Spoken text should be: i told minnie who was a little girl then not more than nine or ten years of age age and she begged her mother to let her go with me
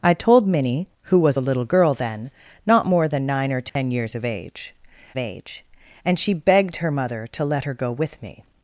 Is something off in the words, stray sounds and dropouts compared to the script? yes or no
yes